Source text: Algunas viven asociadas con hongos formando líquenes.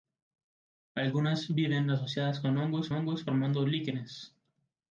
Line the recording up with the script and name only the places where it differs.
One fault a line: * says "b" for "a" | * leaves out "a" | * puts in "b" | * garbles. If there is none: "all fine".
* puts in "hongos"